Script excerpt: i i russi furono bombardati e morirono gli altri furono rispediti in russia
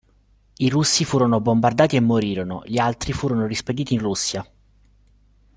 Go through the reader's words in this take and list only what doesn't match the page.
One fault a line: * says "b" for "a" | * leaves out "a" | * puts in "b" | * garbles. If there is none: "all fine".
* leaves out "i"